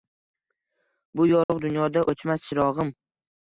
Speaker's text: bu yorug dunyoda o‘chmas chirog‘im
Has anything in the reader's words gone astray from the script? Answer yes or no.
no